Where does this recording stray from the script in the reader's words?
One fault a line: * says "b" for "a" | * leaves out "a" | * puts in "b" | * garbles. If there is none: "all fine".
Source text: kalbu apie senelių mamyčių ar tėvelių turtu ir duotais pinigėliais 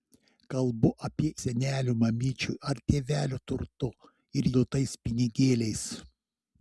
all fine